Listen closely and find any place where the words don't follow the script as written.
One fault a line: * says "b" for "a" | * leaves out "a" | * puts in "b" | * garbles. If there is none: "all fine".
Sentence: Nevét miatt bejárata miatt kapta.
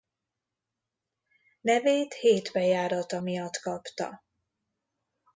* says "hét" for "miatt"